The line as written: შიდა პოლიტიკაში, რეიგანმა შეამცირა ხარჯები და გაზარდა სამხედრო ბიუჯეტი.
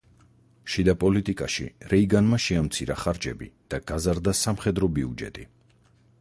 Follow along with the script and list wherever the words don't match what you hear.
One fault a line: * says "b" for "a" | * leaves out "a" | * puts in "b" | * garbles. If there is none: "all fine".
all fine